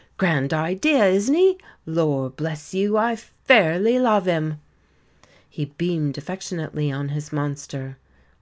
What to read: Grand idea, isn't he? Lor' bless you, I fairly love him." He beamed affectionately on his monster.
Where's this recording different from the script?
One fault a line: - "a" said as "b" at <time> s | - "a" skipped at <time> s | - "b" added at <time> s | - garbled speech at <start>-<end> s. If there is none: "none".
none